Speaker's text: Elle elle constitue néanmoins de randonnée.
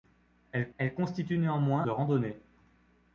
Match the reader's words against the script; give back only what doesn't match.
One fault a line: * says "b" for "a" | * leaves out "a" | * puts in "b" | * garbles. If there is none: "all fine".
all fine